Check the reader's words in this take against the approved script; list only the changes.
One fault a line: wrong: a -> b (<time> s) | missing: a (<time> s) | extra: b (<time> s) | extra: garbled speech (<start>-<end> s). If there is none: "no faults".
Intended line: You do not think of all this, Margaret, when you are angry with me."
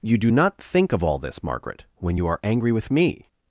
no faults